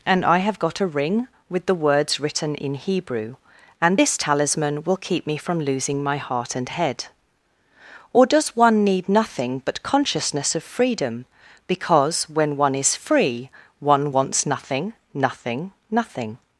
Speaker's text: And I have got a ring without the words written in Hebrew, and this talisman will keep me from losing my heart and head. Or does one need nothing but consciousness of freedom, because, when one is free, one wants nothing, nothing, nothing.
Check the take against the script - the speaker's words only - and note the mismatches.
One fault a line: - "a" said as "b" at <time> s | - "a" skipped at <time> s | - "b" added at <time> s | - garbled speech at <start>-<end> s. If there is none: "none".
- "without" said as "with" at 1.5 s